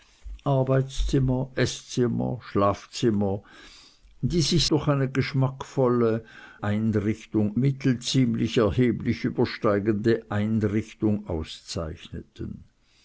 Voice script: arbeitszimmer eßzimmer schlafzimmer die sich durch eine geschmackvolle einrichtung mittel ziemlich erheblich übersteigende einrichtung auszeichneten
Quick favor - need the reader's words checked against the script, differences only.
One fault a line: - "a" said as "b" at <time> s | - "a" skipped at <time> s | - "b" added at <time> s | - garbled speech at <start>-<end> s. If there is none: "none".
none